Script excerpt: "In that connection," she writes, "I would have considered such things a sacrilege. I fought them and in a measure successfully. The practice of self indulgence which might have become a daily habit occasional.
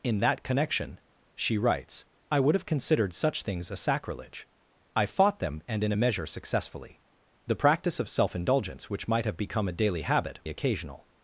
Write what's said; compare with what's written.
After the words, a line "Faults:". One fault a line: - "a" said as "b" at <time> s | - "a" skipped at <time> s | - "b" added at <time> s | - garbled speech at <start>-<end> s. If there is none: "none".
"In that connection," she writes, "I would have considered such things a sacrilege. I fought them and in a measure successfully. The practice of self indulgence which might have become a daily habit occasional.
Faults:
none